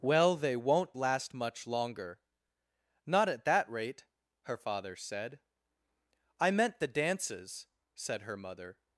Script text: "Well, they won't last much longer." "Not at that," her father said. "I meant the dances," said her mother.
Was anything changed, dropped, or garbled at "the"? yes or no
no